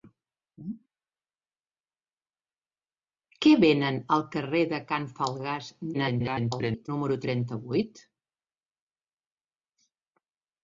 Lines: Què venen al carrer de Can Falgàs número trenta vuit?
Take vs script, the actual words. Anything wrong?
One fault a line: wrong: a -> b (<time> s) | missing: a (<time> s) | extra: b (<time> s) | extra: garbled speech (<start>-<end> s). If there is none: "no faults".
extra: garbled speech (5.9-6.9 s)